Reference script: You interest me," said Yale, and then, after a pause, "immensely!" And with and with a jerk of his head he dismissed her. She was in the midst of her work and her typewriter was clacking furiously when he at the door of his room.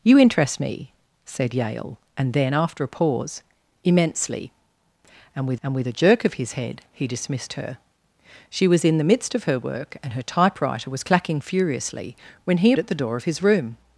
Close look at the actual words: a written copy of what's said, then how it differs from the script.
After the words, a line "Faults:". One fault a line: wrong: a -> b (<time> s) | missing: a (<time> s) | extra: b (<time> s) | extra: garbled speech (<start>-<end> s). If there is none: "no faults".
You interest me," said Yale, and then, after a pause, "immensely!" And with and with a jerk of his head he dismissed her. She was in the midst of her work and her typewriter was clacking furiously when he at the door of his room.
Faults:
no faults